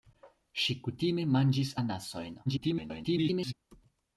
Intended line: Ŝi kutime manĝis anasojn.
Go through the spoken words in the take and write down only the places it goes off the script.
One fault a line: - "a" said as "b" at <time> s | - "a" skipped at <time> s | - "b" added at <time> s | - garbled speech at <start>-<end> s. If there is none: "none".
- garbled speech at 2.5-3.5 s